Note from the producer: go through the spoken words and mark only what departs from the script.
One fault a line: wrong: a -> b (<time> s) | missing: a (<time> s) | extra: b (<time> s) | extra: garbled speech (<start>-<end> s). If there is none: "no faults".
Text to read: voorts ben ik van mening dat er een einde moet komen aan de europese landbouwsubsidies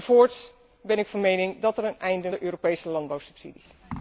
missing: moet komen aan (2.3 s)